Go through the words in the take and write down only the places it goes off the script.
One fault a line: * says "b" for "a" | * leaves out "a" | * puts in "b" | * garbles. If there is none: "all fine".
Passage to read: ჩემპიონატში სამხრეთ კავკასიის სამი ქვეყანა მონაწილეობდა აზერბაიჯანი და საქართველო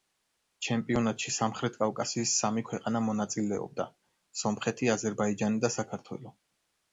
* puts in "სომხეთი"